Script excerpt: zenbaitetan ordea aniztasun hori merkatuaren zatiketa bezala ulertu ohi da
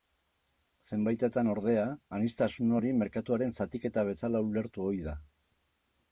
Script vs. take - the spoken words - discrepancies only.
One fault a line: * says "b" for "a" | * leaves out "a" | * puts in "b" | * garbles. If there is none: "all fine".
all fine